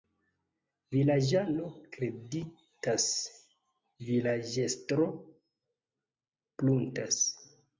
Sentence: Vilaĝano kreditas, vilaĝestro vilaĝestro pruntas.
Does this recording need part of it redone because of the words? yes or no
yes